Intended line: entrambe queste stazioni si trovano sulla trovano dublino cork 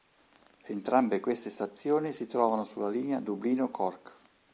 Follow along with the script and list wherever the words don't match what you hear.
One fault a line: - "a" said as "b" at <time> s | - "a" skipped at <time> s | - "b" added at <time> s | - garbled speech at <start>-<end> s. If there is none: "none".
- "trovano" said as "linea" at 2.9 s